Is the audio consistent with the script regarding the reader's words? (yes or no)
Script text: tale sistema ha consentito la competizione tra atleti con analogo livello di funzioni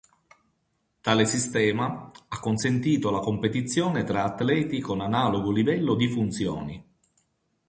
yes